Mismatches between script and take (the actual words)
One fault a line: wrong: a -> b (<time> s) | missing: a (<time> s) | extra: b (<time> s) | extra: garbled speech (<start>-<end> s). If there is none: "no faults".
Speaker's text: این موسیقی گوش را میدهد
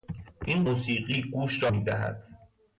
no faults